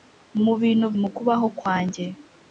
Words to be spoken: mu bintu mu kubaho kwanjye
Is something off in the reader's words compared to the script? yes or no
no